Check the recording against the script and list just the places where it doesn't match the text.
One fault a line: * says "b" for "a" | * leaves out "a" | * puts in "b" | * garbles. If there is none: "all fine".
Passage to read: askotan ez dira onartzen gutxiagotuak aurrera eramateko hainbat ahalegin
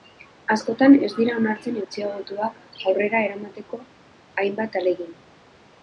all fine